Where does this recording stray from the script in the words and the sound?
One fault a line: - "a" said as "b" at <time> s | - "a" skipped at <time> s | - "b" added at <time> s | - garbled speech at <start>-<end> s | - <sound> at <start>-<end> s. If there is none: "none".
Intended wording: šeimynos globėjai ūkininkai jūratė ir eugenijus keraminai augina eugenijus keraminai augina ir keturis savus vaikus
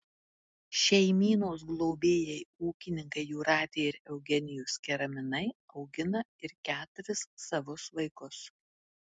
- "eugenijus keraminai augina" skipped at 6.2 s